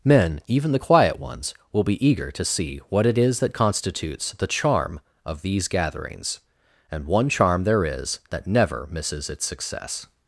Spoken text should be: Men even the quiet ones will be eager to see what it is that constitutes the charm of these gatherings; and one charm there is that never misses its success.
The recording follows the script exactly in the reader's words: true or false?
true